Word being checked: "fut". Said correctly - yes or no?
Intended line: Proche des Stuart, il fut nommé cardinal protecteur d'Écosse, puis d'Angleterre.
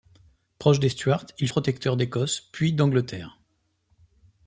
no